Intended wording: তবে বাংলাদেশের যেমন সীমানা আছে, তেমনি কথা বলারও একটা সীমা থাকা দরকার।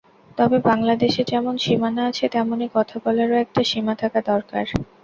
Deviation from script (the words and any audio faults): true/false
false